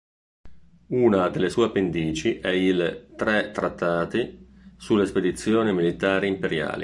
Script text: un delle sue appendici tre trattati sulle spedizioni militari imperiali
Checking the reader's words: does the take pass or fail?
fail